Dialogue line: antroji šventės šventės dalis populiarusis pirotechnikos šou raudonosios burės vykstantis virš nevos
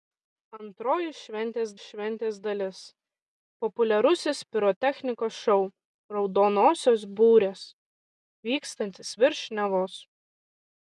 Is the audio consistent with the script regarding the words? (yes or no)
yes